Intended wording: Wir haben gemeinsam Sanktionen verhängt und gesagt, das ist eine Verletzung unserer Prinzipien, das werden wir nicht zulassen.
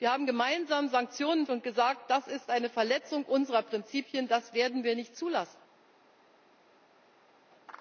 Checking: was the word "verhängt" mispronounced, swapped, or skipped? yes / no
yes